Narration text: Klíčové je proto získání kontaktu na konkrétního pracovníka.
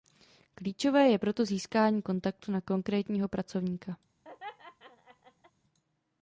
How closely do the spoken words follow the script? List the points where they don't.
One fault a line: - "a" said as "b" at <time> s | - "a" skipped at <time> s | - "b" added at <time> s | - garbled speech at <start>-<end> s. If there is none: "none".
none